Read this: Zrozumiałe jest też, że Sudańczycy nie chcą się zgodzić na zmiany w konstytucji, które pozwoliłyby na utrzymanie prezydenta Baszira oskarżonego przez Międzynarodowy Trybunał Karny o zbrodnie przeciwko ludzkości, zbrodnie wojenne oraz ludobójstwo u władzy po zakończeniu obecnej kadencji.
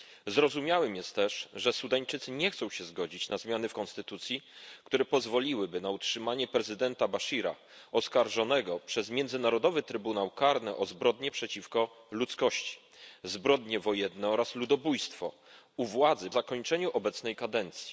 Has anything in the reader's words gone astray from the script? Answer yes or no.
yes